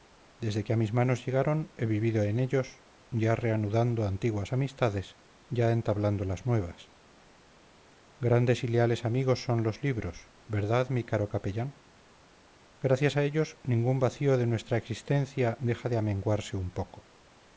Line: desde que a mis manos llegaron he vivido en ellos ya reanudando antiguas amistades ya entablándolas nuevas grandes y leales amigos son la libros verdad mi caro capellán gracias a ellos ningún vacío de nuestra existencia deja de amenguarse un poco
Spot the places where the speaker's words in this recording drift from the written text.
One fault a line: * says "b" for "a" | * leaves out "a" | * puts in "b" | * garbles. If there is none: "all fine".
* says "los" for "la"